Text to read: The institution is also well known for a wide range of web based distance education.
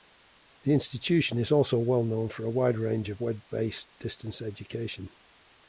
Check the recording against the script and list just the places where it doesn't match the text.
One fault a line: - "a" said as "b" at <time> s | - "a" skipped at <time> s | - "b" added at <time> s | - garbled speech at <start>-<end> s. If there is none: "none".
none